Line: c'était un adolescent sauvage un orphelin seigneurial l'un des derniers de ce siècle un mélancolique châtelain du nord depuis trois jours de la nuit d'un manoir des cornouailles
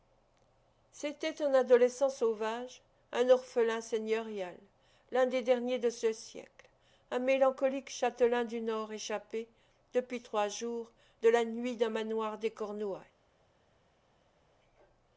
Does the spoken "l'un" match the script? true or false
true